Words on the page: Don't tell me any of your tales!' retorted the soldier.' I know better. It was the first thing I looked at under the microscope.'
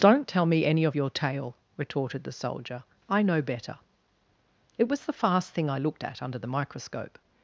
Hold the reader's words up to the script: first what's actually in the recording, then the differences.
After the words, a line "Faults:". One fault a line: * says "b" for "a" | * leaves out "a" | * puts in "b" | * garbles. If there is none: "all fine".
Don't tell me any of your tale!' retorted the soldier.' I know better. It was the fast thing I looked at under the microscope.'
Faults:
* says "tale" for "tales"
* says "fast" for "first"